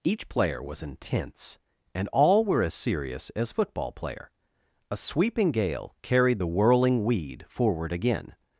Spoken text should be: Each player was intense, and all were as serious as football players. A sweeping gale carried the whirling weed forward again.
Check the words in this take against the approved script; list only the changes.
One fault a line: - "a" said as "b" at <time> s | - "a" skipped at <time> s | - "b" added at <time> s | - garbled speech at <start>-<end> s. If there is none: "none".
- "players" said as "player" at 3.9 s